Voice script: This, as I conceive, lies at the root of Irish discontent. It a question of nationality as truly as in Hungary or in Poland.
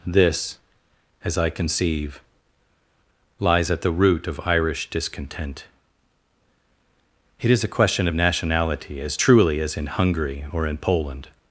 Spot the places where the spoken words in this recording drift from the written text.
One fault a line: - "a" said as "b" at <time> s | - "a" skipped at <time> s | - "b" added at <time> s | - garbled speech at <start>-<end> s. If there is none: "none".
- "is" added at 7.5 s